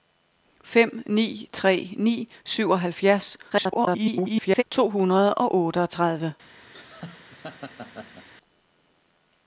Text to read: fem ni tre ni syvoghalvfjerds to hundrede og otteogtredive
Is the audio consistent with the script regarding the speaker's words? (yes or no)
no